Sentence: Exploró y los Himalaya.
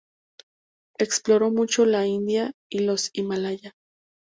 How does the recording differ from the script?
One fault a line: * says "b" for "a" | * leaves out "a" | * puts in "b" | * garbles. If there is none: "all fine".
* puts in "mucho la India"